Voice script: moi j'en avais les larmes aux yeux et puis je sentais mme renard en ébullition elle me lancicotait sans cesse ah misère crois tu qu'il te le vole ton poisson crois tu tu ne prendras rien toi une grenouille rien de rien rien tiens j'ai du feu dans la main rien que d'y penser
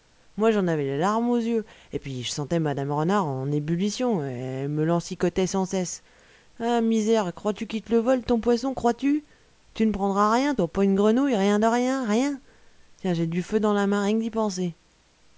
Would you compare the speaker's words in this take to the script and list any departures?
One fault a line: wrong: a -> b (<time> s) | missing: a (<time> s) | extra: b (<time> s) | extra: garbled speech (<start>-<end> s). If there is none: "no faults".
extra: pas (10.7 s)